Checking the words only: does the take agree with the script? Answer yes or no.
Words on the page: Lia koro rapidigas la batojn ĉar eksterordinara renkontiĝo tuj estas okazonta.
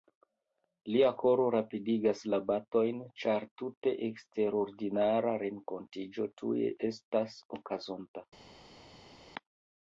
no